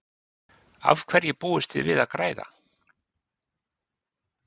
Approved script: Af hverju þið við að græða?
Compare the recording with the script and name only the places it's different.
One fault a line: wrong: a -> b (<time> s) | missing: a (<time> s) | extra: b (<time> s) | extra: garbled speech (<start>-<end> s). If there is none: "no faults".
extra: búist (1.4 s)